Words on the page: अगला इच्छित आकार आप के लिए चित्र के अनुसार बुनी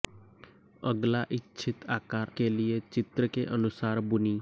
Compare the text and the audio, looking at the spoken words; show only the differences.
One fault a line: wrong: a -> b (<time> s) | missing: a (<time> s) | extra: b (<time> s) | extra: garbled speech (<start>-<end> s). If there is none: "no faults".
missing: आप (2.3 s)